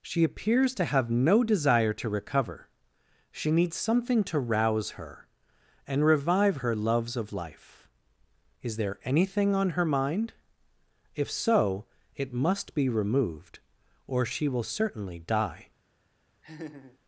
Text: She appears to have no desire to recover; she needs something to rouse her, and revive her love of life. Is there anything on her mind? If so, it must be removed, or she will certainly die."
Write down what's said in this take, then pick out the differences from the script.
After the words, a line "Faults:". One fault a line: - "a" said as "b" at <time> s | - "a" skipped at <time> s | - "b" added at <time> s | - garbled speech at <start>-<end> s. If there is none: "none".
She appears to have no desire to recover; she needs something to rouse her, and revive her loves of life. Is there anything on her mind? If so, it must be removed, or she will certainly die."
Faults:
- "love" said as "loves" at 6.7 s